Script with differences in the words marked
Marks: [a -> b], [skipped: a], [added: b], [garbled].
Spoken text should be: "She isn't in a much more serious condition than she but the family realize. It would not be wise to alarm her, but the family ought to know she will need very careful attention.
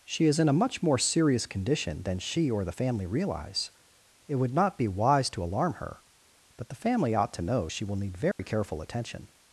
"She [isn't -> is] in a much more serious condition than she [but -> or] the family realize. It would not be wise to alarm her, but the family ought to know she will need very careful attention.